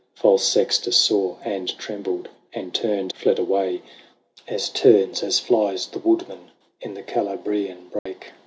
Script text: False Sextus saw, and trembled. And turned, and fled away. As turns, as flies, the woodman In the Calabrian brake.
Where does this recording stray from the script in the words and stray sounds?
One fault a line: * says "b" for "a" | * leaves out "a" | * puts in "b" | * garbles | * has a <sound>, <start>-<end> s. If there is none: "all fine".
* leaves out "and"
* has a dropout, 8.0-8.1 s